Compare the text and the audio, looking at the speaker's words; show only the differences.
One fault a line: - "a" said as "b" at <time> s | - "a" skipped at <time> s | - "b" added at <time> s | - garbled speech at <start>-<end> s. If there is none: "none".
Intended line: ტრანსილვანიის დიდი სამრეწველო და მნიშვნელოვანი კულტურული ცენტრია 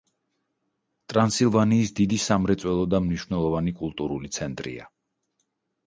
none